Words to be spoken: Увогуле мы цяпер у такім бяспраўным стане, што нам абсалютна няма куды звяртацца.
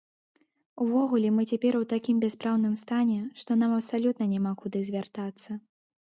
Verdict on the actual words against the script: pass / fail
pass